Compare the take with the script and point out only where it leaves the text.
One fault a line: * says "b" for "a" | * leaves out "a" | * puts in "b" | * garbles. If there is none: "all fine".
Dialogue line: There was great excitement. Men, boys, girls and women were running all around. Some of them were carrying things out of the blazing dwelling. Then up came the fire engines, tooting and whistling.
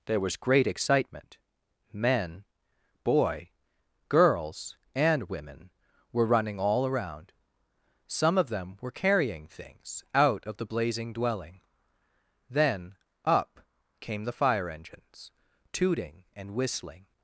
* says "boy" for "boys"